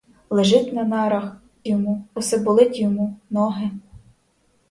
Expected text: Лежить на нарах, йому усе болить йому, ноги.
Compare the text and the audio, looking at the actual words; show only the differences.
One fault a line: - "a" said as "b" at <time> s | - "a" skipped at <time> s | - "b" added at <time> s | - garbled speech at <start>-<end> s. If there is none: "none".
none